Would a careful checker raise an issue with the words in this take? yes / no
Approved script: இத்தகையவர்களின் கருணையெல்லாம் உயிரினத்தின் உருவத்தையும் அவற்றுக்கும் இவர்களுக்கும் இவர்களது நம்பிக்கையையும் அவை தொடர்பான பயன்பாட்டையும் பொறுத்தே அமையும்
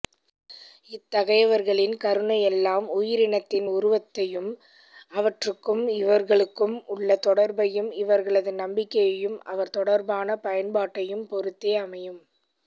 yes